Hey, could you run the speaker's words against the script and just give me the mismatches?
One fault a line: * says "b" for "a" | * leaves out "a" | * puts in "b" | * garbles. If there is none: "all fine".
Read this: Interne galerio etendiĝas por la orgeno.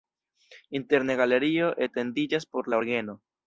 all fine